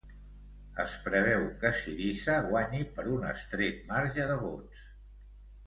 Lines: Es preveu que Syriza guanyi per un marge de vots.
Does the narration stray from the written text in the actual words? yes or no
yes